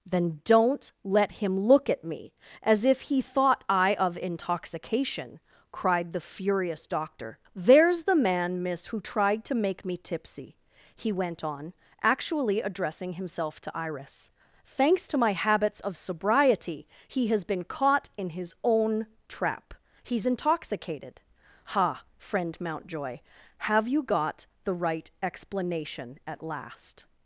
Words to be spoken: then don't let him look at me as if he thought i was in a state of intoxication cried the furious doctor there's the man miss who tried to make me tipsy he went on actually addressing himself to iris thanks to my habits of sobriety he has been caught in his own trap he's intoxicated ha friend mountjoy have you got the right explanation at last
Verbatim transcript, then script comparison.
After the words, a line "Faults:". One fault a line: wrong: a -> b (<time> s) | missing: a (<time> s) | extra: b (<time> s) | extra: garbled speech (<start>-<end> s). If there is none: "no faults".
then don't let him look at me as if he thought i of intoxication cried the furious doctor there's the man miss who tried to make me tipsy he went on actually addressing himself to iris thanks to my habits of sobriety he has been caught in his own trap he's intoxicated ha friend mountjoy have you got the right explanation at last
Faults:
missing: was in a state (4.0 s)